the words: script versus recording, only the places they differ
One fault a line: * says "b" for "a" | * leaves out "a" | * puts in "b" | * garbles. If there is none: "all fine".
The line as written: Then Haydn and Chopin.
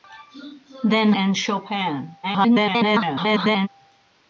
* leaves out "Haydn"
* garbles